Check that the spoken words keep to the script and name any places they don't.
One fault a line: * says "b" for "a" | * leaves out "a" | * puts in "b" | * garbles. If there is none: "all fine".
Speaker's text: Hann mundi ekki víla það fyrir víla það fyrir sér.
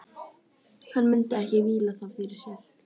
* leaves out "víla það fyrir"